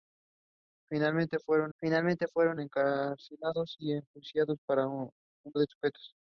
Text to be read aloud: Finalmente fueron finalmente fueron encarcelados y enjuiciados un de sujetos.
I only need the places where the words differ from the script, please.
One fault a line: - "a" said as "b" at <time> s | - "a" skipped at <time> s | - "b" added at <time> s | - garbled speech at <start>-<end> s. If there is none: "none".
none